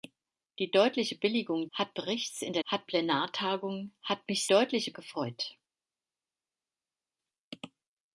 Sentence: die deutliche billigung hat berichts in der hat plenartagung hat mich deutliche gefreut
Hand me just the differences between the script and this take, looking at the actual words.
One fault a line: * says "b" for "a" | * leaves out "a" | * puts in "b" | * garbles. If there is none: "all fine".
all fine